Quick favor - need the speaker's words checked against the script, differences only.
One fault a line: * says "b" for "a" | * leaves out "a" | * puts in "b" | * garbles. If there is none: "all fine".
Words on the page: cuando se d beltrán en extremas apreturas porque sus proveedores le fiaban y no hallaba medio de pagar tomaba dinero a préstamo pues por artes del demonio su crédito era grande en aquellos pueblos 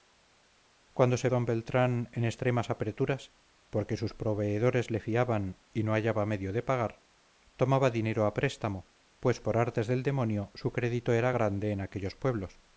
all fine